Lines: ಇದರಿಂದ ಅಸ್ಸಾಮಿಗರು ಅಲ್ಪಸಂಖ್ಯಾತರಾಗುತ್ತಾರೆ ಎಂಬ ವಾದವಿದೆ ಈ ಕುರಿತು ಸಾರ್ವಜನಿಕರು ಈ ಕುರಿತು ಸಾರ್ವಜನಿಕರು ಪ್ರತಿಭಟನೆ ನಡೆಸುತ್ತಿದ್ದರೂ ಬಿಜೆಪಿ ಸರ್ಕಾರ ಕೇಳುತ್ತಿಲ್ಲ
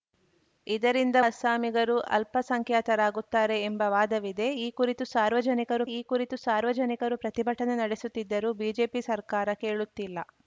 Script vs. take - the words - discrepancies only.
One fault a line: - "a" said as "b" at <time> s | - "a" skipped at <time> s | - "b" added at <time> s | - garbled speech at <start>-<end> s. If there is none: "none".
none